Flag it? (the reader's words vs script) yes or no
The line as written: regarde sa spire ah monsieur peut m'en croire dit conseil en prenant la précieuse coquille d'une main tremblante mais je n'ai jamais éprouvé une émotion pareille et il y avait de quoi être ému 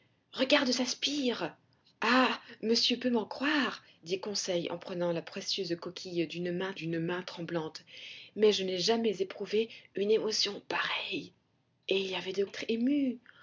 yes